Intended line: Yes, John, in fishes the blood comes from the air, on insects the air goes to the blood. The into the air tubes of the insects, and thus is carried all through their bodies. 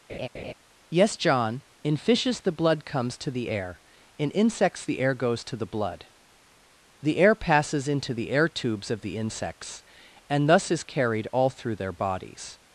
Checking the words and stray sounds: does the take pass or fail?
fail